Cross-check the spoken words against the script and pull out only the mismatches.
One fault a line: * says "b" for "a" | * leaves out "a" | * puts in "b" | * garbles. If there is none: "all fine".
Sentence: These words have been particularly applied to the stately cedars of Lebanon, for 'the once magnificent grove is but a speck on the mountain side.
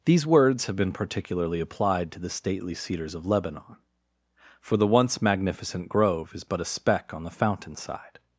* says "fountain" for "mountain"